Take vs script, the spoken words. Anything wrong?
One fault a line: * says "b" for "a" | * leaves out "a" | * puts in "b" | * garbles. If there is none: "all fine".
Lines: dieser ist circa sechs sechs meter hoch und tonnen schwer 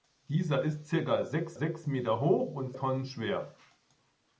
all fine